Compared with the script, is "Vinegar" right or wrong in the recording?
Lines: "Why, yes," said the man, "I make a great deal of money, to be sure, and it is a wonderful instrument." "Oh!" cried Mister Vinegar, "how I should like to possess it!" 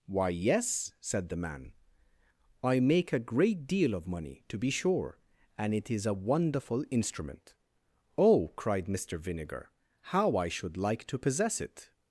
right